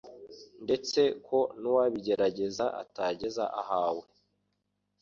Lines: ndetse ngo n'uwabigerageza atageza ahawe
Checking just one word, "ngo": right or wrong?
wrong